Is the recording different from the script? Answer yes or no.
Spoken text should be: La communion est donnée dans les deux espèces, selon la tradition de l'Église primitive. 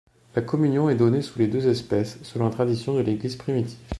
yes